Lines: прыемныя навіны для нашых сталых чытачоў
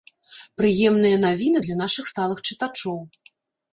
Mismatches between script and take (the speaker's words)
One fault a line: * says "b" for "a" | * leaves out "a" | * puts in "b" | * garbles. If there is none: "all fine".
all fine